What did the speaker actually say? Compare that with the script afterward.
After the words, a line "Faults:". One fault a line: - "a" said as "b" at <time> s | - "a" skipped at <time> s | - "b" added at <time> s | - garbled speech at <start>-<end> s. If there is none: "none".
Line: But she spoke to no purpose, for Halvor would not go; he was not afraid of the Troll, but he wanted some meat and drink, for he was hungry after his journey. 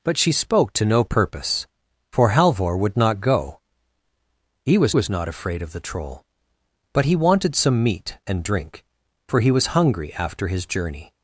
But she spoke to no purpose, for Halvor would not go; he was was not afraid of the Troll, but he wanted some meat and drink, for he was hungry after his journey.
Faults:
- "was" added at 4.9 s